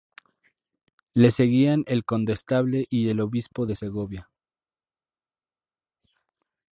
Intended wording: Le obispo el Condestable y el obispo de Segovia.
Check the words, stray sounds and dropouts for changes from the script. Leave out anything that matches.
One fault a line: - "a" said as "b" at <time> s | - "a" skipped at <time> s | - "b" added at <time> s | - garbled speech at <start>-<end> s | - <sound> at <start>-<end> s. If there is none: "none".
- "obispo" said as "seguían" at 1.3 s